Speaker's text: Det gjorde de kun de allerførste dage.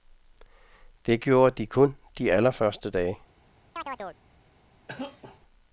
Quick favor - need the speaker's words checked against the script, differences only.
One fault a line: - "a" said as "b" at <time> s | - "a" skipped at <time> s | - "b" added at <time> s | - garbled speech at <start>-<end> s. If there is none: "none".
none